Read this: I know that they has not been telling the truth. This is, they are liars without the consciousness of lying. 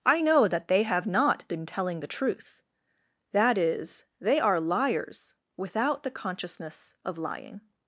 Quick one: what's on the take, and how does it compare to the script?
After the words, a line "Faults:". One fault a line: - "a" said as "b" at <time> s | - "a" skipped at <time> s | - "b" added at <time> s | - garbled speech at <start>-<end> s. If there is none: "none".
I know that they have not been telling the truth. That is, they are liars without the consciousness of lying.
Faults:
- "has" said as "have" at 0.8 s
- "This" said as "That" at 3.3 s